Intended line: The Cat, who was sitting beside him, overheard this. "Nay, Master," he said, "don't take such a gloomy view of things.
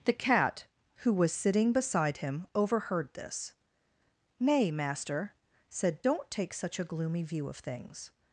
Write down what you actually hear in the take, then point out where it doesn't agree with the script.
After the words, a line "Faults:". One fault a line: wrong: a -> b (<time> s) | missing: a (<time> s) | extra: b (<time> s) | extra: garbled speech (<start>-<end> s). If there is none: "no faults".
The Cat, who was sitting beside him, overheard this. "Nay, Master," said, "don't take such a gloomy view of things.
Faults:
missing: he (5.3 s)